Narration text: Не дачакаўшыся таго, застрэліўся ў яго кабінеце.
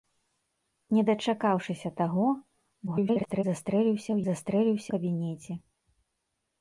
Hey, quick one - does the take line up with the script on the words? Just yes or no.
no